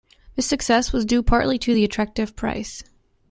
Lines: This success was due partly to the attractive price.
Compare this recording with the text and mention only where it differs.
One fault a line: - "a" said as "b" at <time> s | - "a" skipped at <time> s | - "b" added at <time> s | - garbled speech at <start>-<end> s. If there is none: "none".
none